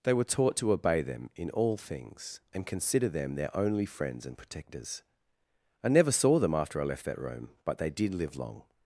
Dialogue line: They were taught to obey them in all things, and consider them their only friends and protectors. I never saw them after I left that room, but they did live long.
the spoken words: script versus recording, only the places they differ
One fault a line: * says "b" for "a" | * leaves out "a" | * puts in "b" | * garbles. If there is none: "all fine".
all fine